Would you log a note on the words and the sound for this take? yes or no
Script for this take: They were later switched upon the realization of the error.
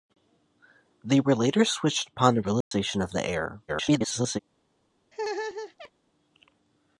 yes